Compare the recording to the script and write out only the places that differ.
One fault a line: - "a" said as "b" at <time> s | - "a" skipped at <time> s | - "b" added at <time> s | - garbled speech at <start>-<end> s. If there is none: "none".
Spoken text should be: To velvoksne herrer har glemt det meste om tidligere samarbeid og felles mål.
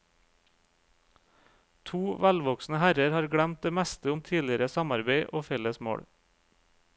none